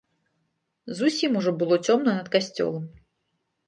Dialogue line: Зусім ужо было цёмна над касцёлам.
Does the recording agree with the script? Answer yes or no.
yes